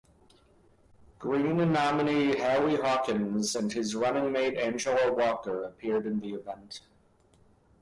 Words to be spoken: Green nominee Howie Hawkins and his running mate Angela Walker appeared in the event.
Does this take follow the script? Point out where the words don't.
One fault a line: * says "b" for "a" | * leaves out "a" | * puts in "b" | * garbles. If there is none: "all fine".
all fine